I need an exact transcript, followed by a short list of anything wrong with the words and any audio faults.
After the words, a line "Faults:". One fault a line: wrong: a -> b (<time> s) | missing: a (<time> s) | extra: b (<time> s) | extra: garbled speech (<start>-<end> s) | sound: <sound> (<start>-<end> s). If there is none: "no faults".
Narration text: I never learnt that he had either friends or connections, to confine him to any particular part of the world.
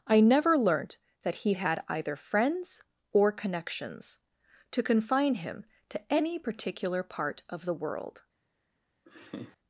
I never learnt that he had either friends or connections, to confine him to any particular part of the world.
Faults:
sound: laugh (9.1-9.6 s)